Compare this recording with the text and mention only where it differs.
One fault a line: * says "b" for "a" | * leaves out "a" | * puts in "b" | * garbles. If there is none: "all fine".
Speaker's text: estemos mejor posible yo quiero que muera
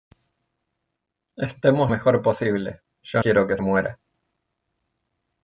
all fine